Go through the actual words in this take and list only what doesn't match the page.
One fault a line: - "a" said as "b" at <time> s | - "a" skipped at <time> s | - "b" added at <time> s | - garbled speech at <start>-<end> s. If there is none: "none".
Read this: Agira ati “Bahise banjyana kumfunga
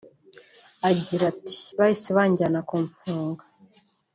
none